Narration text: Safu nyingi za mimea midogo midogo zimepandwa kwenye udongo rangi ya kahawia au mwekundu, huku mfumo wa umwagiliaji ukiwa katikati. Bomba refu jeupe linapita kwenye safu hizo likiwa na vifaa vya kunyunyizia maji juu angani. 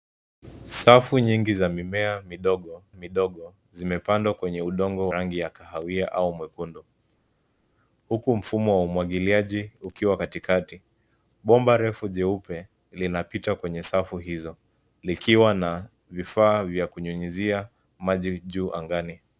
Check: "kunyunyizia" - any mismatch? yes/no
no